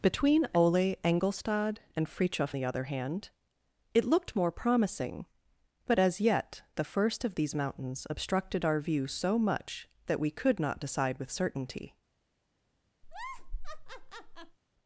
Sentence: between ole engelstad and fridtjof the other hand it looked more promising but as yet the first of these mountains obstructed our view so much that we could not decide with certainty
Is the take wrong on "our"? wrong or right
right